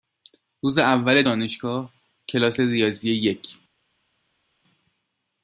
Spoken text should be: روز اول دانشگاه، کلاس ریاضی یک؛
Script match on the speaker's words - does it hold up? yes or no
yes